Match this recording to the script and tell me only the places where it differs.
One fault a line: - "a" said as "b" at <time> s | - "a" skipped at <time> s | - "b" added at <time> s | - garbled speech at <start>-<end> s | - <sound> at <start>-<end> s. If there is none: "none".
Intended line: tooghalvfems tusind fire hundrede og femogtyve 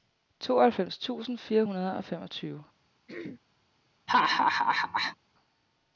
- throat clearing at 3.1-3.4 s
- laugh at 4.1-5.2 s